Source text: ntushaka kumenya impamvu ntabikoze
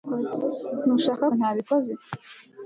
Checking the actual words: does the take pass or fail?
fail